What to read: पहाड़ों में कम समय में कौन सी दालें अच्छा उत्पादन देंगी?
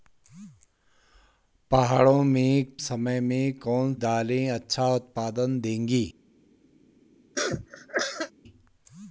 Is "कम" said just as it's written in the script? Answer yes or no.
no